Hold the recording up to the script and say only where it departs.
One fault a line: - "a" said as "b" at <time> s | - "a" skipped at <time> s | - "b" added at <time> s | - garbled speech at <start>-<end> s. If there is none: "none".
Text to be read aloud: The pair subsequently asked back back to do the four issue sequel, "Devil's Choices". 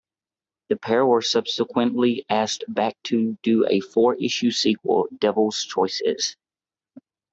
- "were" added at 1.1 s
- "back" skipped at 3.0 s
- "the" said as "a" at 3.7 s